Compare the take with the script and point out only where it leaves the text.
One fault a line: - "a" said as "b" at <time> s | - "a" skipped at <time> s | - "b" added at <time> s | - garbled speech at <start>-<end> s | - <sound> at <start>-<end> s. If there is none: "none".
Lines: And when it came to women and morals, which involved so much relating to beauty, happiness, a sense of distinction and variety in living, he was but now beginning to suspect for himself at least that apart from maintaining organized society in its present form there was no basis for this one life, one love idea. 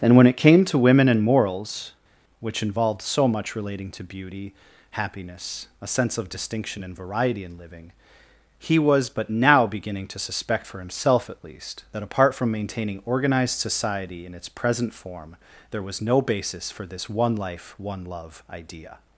none